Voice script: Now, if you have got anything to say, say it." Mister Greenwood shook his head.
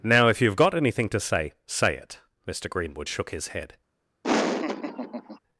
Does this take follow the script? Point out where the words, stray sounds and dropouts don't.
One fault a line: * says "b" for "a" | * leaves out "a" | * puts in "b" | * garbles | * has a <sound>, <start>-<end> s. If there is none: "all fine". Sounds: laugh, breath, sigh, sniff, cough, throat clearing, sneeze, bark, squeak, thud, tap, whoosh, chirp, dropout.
* has a laugh, 4.2-5.4 s